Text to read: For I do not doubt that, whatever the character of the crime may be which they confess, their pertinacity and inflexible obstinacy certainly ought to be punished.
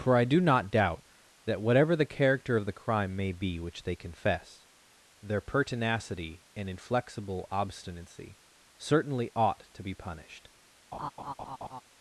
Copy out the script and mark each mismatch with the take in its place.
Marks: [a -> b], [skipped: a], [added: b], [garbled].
For I do not doubt that, whatever the character of the crime may be which they confess, their pertinacity and inflexible obstinacy certainly ought to be punished.